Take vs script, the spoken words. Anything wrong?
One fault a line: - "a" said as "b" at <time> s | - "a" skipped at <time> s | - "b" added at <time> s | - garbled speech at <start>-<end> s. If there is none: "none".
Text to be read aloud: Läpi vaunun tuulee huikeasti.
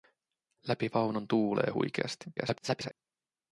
- garbled speech at 2.4-2.9 s